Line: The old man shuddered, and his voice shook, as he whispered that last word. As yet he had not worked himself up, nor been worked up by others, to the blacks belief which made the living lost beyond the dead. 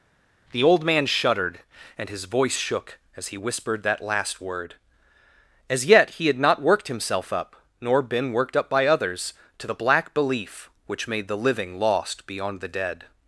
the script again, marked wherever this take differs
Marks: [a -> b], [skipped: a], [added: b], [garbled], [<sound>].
The old man shuddered, and his voice shook, as he whispered that last word. As yet he had not worked himself up, nor been worked up by others, to the [blacks -> black] belief which made the living lost beyond the dead.